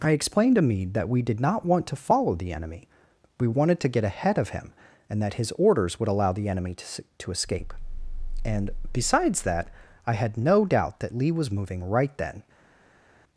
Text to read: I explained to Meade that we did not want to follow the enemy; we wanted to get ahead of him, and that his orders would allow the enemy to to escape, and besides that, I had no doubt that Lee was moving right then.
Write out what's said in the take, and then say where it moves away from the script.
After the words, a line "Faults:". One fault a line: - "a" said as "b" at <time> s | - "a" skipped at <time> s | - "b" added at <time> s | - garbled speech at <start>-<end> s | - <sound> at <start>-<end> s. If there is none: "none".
I explained to Meade that we did not want to follow the enemy; we wanted to get ahead of him, and that his orders would allow the enemy to to escape, and besides that, I had no doubt that Lee was moving right then.
Faults:
none